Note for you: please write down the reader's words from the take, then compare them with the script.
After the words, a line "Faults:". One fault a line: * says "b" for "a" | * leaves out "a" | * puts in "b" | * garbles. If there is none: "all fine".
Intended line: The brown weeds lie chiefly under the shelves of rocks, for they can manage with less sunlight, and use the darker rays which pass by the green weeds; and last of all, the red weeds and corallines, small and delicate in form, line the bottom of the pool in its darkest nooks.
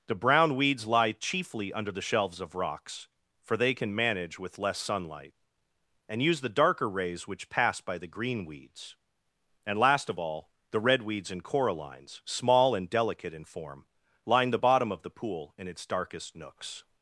The brown weeds lie chiefly under the shelves of rocks, for they can manage with less sunlight, and use the darker rays which pass by the green weeds; and last of all, the red weeds and corallines, small and delicate in form, line the bottom of the pool in its darkest nooks.
Faults:
all fine